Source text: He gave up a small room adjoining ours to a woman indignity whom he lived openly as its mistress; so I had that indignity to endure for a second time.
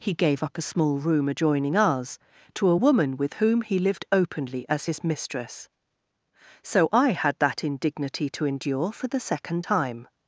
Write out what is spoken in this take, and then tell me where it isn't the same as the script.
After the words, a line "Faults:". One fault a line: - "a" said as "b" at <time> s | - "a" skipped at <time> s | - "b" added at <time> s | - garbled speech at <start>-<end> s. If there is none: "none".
He gave up a small room adjoining ours to a woman with whom he lived openly as his mistress; so I had that indignity to endure for the second time.
Faults:
- "indignity" said as "with" at 3.2 s
- "its" said as "his" at 4.8 s
- "a" said as "the" at 9.1 s